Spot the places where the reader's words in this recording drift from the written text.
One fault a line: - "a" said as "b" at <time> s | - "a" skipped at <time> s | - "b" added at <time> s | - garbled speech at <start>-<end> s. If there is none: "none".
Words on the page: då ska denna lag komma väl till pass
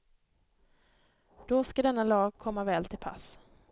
none